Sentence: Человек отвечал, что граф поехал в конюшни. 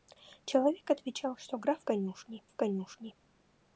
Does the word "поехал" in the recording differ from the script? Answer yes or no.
yes